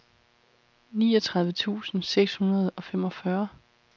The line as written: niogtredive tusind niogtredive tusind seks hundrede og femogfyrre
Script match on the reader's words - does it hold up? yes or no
no